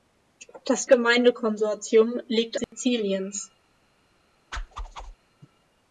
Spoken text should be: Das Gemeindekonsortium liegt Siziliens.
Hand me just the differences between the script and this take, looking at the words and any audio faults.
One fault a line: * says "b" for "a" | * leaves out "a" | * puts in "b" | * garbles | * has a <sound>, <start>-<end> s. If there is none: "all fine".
* has a dropout, 2.6-2.7 s
* has a whoosh, 4.5-5.2 s